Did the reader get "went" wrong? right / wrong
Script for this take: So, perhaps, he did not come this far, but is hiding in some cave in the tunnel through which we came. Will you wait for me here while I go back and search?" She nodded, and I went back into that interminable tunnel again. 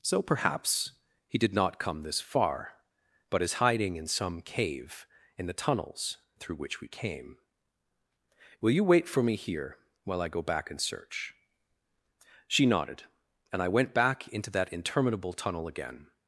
right